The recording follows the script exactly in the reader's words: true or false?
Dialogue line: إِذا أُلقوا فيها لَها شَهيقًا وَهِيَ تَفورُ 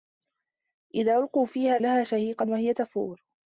true